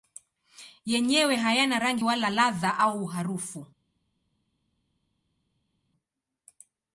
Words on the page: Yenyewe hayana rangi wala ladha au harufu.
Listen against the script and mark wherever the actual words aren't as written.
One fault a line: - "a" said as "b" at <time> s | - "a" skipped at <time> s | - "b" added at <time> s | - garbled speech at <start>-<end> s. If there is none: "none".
none